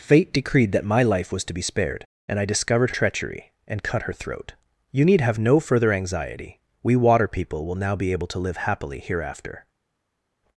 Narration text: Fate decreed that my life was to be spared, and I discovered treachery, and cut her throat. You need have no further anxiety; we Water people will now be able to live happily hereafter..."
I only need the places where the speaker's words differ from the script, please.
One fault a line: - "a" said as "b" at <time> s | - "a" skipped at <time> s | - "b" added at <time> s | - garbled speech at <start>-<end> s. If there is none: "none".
none